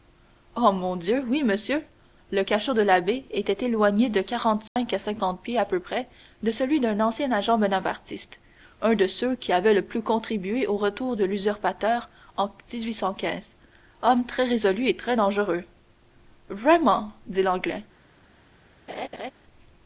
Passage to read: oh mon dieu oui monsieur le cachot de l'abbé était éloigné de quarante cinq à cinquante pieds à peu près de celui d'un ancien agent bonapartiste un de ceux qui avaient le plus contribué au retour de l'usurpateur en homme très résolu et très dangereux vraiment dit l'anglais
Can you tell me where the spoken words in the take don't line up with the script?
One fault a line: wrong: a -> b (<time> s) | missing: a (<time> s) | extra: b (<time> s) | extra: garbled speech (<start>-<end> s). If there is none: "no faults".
no faults